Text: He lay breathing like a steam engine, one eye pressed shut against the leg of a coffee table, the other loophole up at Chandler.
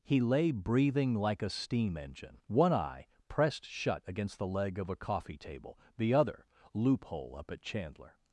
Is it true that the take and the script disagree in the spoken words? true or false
false